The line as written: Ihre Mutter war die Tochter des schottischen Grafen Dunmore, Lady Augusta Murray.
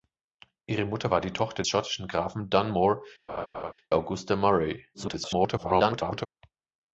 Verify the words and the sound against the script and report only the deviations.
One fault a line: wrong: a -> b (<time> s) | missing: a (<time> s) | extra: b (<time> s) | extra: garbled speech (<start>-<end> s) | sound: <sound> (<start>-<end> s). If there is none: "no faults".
missing: des (1.6 s)
missing: Lady (3.0 s)
sound: laugh (3.3-3.7 s)
extra: garbled speech (4.9-6.3 s)